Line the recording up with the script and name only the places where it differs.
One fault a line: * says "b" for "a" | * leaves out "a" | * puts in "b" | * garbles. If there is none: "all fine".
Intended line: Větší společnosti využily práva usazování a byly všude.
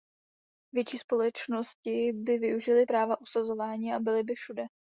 * puts in "by"
* puts in "by"